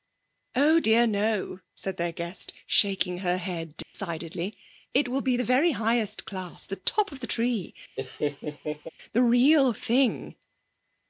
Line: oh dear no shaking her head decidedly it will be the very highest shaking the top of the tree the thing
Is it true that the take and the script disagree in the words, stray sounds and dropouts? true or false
true